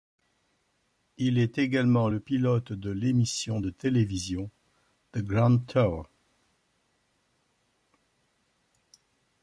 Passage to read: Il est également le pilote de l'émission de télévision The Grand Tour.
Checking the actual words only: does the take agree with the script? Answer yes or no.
yes